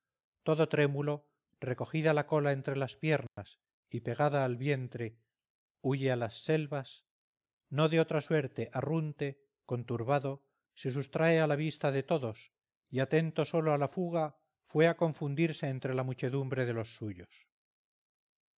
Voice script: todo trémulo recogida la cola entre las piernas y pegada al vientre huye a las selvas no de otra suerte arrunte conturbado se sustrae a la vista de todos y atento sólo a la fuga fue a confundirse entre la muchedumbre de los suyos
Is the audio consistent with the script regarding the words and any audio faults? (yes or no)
no